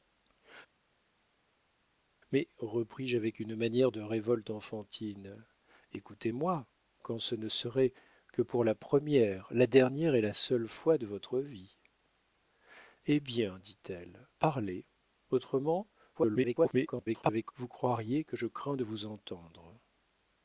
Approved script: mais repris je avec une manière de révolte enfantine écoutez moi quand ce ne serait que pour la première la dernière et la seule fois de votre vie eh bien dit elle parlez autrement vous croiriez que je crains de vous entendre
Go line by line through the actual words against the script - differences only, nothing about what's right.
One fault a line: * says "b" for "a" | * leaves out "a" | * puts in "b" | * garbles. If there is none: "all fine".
* garbles